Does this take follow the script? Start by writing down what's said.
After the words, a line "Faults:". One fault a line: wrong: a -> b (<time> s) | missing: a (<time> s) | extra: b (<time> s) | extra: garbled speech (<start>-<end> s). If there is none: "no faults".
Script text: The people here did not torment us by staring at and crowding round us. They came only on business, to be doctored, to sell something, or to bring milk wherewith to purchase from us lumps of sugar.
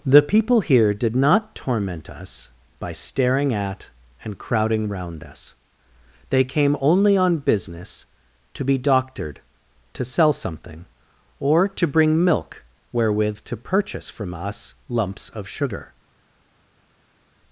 The people here did not torment us by staring at and crowding round us. They came only on business, to be doctored, to sell something, or to bring milk wherewith to purchase from us lumps of sugar.
Faults:
no faults